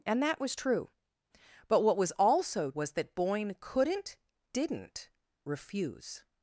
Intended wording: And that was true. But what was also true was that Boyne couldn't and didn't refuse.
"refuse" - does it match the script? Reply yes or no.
yes